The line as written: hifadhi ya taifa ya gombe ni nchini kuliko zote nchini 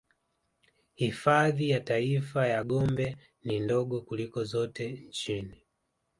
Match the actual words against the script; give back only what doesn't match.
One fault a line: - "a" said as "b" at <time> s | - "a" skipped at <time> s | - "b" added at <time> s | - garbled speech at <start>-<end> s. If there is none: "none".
- "nchini" said as "ndogo" at 3.6 s